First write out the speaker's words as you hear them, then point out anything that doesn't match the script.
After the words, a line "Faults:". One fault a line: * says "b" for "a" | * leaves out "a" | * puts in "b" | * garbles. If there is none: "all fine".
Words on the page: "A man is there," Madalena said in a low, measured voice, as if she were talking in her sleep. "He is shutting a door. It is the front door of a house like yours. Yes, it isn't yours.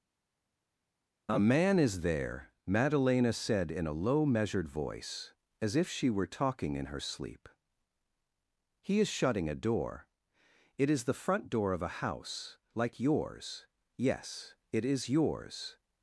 "A man is there," Madalena said in a low, measured voice, as if she were talking in her sleep. "He is shutting a door. It is the front door of a house like yours. Yes, it is yours.
Faults:
* says "is" for "isn't"